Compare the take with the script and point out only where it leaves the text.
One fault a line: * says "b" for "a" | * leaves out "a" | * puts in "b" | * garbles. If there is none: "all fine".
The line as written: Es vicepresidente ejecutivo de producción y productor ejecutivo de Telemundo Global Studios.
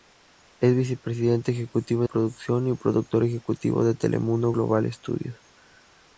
* leaves out "de"